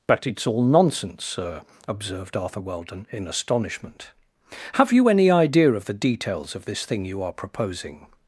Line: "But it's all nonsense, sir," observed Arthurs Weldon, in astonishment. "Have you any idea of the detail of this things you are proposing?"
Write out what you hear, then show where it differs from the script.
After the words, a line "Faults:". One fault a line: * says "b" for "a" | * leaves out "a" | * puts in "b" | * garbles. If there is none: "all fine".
"But it's all nonsense, sir," observed Arthur Weldon, in astonishment. "Have you any idea of the details of this thing you are proposing?"
Faults:
* says "Arthur" for "Arthurs"
* says "details" for "detail"
* says "thing" for "things"